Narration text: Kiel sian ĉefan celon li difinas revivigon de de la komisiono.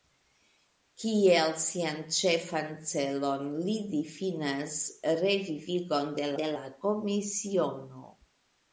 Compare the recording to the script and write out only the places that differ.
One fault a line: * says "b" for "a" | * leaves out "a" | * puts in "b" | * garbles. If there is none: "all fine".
all fine